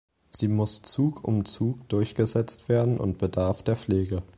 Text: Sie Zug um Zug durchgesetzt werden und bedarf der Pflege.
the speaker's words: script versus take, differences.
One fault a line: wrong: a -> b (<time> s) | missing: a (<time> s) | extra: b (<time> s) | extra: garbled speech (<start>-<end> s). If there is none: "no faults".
extra: muss (0.5 s)